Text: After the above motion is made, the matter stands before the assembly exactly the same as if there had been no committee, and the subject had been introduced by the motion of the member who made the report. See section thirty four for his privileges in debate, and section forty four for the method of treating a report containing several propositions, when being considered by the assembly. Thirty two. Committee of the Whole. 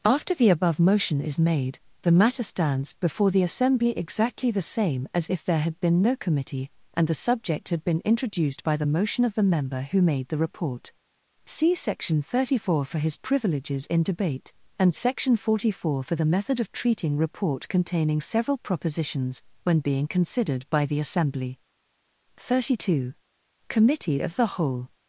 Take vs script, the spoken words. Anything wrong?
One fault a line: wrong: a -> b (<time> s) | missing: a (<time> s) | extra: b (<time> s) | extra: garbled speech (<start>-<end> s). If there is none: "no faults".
missing: a (17.2 s)